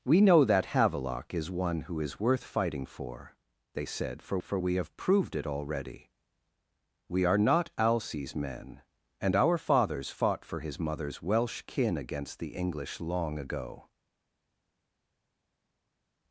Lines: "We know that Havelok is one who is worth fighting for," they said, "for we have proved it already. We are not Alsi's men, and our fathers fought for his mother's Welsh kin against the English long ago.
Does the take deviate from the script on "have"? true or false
false